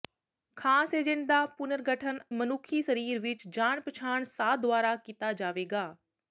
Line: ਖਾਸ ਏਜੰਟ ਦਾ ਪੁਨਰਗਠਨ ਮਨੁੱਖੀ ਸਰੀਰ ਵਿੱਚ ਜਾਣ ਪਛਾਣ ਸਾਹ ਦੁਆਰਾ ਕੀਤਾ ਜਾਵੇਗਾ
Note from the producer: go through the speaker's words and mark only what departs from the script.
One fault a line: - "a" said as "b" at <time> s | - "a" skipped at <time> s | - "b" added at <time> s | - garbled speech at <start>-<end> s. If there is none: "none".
none